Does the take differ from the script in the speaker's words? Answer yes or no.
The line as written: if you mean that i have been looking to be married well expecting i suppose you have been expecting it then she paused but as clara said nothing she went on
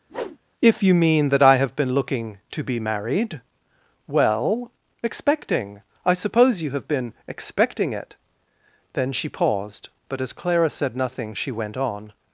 no